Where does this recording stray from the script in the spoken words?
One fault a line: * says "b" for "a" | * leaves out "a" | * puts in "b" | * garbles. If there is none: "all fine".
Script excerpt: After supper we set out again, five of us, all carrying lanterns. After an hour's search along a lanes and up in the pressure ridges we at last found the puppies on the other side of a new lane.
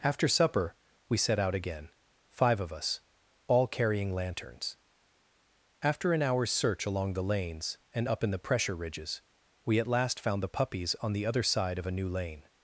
* says "the" for "a"